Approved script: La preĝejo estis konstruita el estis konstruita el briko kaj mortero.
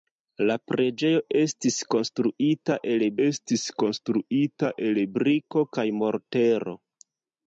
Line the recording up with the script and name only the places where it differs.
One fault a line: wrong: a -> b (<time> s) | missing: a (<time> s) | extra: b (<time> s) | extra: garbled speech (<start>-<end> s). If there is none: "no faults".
no faults